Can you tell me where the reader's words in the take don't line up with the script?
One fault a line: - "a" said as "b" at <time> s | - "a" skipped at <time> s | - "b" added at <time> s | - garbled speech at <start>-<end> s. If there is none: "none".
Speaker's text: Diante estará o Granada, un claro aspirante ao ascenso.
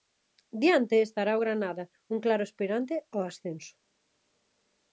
none